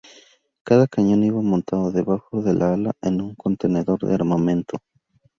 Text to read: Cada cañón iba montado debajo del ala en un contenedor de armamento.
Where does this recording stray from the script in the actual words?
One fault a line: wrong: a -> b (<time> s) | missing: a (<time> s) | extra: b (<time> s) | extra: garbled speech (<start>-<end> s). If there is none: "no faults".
no faults